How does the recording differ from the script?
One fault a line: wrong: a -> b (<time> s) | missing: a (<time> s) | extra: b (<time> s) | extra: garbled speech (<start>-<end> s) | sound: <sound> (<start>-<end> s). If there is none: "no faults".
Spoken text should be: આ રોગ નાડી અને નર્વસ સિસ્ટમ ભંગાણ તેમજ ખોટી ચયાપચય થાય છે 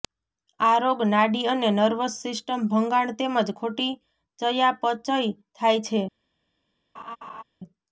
sound: laugh (7.0-7.4 s)